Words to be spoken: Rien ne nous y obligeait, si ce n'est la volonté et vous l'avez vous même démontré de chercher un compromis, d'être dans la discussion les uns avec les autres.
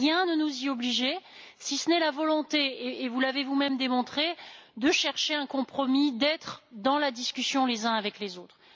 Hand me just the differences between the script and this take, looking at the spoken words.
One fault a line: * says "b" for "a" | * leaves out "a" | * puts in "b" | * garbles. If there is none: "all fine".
all fine